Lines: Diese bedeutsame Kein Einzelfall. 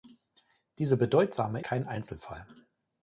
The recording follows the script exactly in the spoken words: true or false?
true